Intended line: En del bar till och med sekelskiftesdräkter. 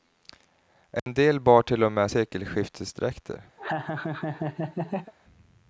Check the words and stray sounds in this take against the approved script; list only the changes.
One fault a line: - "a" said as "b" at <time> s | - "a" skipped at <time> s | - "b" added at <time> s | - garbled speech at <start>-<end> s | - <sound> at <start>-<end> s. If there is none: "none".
- dropout at 1.0-1.1 s
- laugh at 3.6-5.1 s